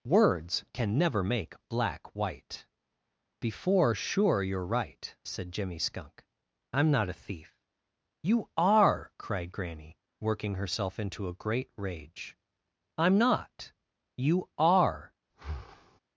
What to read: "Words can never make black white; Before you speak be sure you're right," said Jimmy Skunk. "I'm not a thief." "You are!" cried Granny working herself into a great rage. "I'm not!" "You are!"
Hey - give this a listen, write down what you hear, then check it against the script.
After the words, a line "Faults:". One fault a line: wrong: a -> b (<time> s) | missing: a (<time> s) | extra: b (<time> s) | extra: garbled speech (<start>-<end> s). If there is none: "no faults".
"Words can never make black white; Before sure you're right," said Jimmy Skunk. "I'm not a thief." "You are!" cried Granny working herself into a great rage. "I'm not!" "You are!"
Faults:
missing: you speak be (3.9 s)